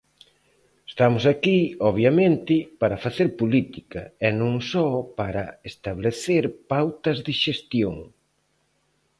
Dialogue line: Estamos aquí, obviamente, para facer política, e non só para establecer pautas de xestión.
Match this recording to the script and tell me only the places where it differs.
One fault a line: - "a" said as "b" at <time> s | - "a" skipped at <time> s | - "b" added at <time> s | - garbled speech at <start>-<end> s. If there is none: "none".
none